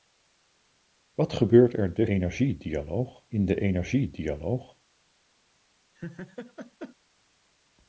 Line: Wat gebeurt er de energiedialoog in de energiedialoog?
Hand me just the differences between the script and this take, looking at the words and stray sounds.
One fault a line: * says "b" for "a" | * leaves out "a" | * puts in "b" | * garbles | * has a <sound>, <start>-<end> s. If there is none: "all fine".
* has a laugh, 5.9-7.0 s